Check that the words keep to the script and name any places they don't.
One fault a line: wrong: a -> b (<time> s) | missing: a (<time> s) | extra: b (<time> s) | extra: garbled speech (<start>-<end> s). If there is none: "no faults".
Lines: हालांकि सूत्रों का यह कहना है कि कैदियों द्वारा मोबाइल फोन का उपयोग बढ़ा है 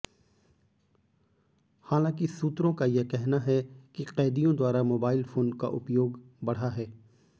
no faults